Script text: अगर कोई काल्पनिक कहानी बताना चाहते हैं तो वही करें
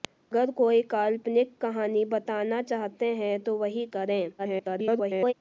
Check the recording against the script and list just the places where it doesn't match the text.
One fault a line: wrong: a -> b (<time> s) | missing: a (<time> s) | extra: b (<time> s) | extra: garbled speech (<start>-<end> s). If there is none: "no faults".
extra: garbled speech (4.4-5.3 s)